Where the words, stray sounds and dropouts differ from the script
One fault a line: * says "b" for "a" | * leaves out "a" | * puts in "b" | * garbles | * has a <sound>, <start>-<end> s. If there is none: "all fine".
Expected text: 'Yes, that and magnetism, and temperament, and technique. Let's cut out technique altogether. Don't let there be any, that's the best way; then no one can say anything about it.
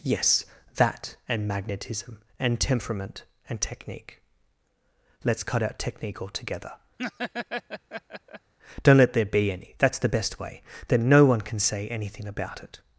* has a laugh, 7.0-8.5 s